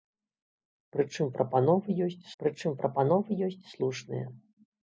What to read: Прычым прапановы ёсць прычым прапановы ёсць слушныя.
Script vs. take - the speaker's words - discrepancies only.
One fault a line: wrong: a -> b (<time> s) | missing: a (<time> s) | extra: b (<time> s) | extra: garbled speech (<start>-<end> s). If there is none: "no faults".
no faults